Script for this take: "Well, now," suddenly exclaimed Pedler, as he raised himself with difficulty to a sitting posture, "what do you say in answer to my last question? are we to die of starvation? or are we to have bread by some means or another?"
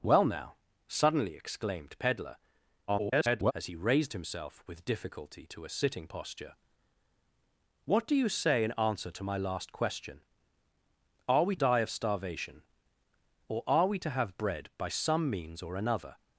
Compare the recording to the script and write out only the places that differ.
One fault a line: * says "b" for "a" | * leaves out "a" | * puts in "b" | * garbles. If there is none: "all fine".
* garbles
* leaves out "to"